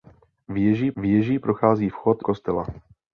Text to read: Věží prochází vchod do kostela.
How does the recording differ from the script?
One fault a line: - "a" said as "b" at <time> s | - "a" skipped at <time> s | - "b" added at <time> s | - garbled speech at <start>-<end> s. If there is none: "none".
- "věží" added at 1.0 s
- "do" skipped at 2.2 s